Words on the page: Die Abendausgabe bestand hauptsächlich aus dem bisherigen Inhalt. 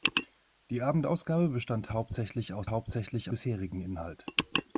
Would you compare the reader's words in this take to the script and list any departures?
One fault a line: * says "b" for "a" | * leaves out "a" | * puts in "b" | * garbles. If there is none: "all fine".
* says "hauptsächlich" for "dem"